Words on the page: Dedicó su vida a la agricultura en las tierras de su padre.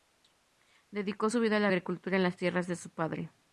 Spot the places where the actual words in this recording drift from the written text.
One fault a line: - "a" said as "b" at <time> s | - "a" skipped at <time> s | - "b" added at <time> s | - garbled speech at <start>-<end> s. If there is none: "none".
none